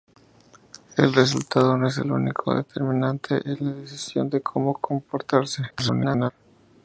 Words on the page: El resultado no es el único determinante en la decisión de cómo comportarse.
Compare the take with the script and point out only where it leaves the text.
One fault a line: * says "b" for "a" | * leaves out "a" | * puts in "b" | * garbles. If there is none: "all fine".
* garbles